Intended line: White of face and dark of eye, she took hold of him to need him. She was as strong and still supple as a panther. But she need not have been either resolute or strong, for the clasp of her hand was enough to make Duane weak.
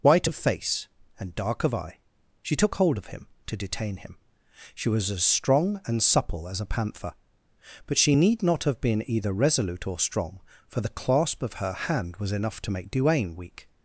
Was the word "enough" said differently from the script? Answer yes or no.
no